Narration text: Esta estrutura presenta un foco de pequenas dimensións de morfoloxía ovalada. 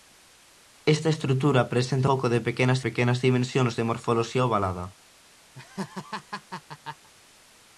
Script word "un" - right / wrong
wrong